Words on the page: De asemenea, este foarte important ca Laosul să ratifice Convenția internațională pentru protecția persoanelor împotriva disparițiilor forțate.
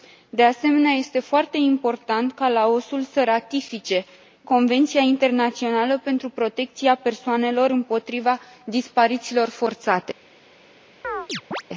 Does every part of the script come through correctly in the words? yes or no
yes